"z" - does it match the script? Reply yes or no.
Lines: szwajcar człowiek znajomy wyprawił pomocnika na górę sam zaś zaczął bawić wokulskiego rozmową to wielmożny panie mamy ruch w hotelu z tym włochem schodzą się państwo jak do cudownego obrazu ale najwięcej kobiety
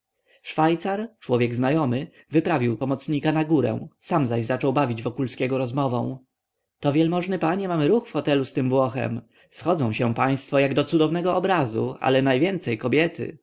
yes